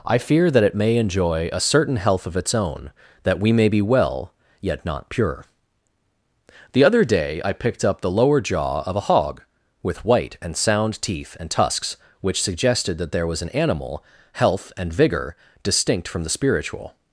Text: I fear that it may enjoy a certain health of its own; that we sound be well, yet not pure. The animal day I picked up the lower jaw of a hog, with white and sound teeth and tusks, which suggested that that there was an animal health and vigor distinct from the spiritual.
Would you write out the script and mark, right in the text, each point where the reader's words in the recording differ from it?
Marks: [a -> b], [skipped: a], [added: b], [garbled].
I fear that it may enjoy a certain health of its own; that we [sound -> may] be well, yet not pure. The [animal -> other] day I picked up the lower jaw of a hog, with white and sound teeth and tusks, which suggested that [skipped: that] there was an animal health and vigor distinct from the spiritual.